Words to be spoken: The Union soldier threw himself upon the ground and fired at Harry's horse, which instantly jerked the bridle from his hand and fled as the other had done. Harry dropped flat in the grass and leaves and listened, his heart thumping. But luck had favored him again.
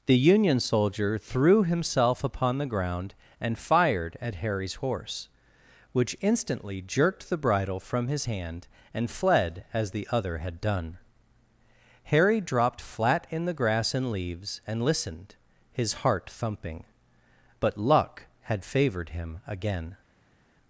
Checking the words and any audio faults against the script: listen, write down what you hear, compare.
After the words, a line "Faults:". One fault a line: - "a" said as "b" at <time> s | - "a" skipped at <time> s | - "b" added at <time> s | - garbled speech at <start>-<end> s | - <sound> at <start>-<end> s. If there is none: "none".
The Union soldier threw himself upon the ground and fired at Harry's horse, which instantly jerked the bridle from his hand and fled as the other had done. Harry dropped flat in the grass and leaves and listened, his heart thumping. But luck had favored him again.
Faults:
none